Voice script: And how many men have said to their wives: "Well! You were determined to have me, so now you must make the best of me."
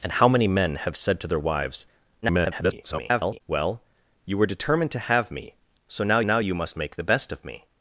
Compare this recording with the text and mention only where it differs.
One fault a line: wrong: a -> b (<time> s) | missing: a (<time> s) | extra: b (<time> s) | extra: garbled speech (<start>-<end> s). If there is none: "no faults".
extra: garbled speech (2.2-3.4 s)
extra: now (6.2 s)